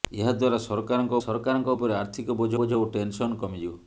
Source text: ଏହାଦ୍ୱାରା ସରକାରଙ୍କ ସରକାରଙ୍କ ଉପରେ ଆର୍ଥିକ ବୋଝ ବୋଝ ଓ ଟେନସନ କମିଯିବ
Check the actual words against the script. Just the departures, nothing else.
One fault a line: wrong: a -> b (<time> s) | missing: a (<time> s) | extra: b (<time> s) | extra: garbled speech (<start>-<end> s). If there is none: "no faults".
no faults